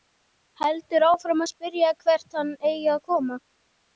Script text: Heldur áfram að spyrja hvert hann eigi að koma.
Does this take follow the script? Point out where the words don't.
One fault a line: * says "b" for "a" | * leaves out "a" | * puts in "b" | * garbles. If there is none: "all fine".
all fine